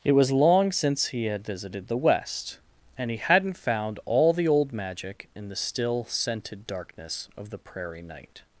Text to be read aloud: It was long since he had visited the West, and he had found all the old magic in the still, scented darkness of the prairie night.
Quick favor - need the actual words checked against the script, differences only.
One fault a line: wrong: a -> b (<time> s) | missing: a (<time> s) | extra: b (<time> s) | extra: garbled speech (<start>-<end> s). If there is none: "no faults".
wrong: had -> hadn't (3.2 s)